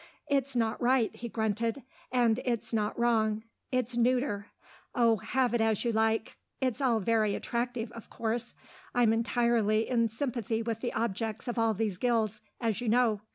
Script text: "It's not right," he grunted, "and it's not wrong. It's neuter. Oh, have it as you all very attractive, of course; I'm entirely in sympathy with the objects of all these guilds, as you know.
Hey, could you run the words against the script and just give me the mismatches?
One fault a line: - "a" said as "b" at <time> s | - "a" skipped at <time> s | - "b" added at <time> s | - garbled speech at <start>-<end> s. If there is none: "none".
- "like It's" added at 5.9 s